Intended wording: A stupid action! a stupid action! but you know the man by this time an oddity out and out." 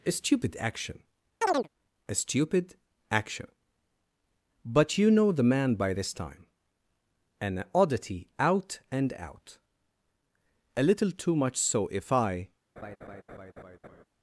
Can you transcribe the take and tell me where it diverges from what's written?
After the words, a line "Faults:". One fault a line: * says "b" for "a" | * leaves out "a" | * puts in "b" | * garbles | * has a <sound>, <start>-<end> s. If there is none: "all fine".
A stupid action! a stupid action! but you know the man by this time an oddity out and out." "A little too much so, if I
Faults:
* has a chirp, 1.4-1.7 s
* puts in "A little too much so if I"
* has a laugh, 12.8-14.0 s